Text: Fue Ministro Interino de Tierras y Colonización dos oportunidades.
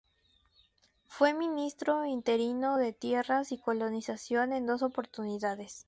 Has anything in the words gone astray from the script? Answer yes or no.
yes